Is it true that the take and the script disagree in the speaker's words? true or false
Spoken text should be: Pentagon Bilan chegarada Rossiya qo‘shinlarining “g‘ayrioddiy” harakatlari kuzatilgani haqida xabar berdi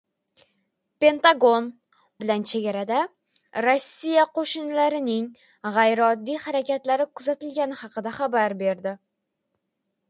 false